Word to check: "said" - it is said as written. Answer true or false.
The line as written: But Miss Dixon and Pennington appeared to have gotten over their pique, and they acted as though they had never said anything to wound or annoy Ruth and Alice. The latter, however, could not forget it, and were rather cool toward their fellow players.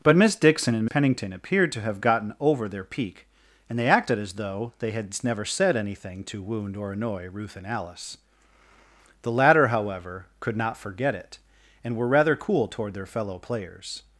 true